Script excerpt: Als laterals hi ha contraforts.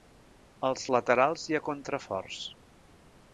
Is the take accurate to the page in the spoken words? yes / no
yes